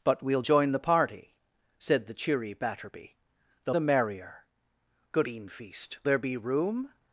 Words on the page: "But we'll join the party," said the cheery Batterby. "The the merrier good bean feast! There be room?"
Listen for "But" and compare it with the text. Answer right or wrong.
right